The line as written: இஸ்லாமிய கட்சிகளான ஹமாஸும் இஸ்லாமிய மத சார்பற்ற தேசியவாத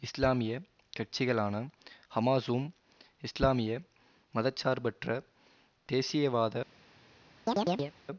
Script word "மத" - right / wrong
right